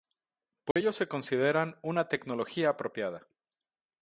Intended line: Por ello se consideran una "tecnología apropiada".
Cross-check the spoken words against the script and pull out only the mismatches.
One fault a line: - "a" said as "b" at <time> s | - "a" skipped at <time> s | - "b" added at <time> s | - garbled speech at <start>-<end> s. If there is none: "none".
none